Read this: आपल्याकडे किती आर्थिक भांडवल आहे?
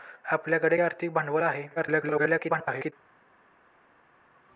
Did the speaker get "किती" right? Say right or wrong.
wrong